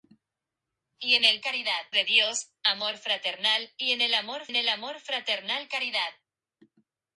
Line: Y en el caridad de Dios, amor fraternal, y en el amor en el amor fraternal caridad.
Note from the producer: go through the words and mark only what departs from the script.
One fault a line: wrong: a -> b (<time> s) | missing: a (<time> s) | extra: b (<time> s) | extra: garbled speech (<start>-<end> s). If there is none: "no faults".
no faults